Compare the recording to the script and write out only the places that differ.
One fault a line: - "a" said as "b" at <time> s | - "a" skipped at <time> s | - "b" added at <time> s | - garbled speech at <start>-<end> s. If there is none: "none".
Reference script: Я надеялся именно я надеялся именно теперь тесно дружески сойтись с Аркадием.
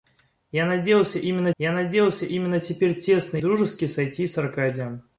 none